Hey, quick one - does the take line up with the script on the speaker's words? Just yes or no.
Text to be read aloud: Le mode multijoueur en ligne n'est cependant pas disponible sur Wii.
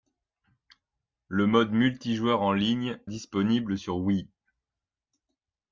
no